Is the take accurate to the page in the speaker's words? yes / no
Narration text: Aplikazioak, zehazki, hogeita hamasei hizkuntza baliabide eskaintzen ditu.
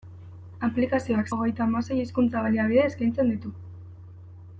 no